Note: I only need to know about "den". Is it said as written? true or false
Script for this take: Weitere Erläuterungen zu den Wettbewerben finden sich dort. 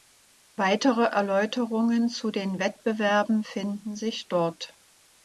true